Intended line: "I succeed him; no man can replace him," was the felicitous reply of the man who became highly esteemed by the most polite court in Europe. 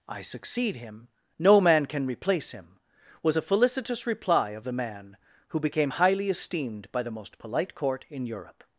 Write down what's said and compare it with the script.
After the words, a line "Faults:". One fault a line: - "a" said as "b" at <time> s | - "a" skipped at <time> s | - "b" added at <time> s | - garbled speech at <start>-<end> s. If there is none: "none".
"I succeed him; no man can replace him," was a felicitous reply of the man who became highly esteemed by the most polite court in Europe.
Faults:
- "the" said as "a" at 3.3 s